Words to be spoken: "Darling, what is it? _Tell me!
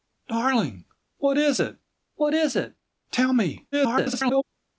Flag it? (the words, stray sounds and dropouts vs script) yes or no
yes